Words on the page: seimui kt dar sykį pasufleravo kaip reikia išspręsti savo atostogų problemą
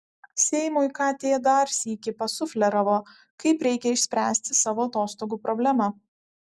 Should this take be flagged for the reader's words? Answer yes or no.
no